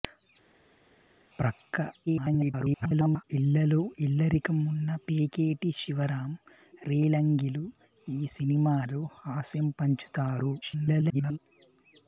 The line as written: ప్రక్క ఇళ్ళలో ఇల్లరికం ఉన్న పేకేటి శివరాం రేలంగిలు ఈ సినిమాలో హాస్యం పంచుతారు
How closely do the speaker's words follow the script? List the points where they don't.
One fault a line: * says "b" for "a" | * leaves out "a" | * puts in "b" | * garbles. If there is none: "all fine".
* garbles
* garbles